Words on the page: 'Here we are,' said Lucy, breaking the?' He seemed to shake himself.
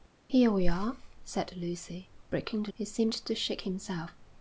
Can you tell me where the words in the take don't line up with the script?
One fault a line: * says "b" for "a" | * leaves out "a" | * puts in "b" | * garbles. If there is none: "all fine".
all fine